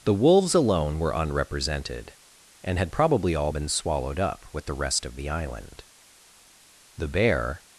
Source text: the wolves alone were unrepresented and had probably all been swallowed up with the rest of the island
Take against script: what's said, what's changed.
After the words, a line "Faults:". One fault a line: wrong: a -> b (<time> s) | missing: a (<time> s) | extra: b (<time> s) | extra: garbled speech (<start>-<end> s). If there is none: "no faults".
the wolves alone were unrepresented and had probably all been swallowed up with the rest of the island the bear
Faults:
extra: the bear (7.0 s)